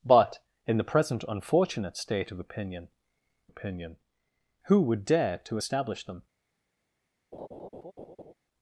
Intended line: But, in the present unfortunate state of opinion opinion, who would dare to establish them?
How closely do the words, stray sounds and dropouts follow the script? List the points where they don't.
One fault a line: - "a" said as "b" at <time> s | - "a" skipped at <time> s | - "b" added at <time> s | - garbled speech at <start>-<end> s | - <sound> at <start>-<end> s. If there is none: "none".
- laugh at 7.3-8.3 s